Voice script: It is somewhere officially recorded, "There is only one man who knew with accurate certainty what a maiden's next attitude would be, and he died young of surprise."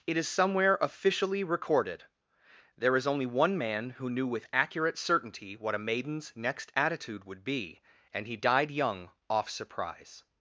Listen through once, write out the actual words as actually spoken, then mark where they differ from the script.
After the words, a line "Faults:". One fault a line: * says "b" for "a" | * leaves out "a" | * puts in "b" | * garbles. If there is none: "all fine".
It is somewhere officially recorded, "There is only one man who knew with accurate certainty what a maiden's next attitude would be, and he died young off surprise."
Faults:
* says "off" for "of"